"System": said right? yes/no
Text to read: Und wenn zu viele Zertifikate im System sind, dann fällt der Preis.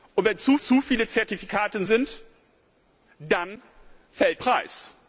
no